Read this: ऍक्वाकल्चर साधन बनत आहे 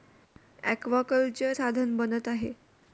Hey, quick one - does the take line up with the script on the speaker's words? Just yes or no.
yes